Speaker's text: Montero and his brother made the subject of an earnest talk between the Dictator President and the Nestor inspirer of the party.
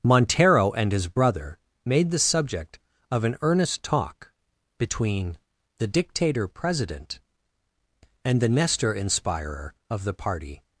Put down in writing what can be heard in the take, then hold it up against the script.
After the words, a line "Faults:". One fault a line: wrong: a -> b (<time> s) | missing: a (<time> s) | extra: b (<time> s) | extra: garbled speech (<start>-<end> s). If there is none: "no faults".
Montero and his brother made the subject of an earnest talk between the Dictator President and the Nestor inspirer of the party.
Faults:
no faults